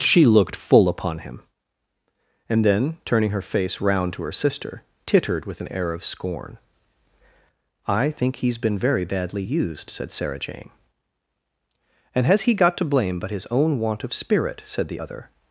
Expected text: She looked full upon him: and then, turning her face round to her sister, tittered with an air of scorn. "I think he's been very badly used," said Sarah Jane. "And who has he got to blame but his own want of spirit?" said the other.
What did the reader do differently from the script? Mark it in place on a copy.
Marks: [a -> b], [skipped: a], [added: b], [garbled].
She looked full upon him: and then, turning her face round to her sister, tittered with an air of scorn. "I think he's been very badly used," said Sarah Jane. "And [skipped: who] has he got to blame but his own want of spirit?" said the other.